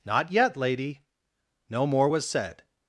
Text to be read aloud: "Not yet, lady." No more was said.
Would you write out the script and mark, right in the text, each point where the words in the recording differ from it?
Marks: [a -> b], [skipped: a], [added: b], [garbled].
"Not yet, lady." No more was said.